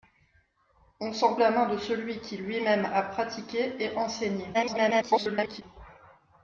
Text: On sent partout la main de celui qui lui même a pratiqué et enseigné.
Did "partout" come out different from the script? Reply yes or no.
yes